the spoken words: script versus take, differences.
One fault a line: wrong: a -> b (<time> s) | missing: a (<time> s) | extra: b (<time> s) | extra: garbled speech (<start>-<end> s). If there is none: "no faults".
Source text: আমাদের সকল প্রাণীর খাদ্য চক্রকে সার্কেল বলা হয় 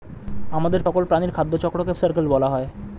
no faults